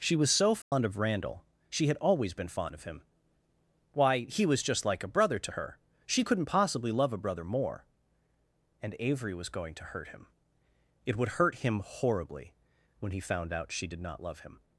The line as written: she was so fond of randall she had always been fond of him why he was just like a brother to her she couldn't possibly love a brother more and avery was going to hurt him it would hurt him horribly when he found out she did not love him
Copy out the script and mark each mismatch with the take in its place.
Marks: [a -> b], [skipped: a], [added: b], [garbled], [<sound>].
she was so fond [dropout] of randall she had always been fond of him why he was just like a brother to her she couldn't possibly love a brother more and avery was going to hurt him it would hurt him horribly when he found out she did not love him